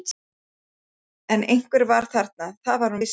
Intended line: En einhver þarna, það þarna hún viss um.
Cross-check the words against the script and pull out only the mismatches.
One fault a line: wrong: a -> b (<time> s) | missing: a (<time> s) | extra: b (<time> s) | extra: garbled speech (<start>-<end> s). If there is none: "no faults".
extra: var (1.9 s)
wrong: þarna -> var (2.9 s)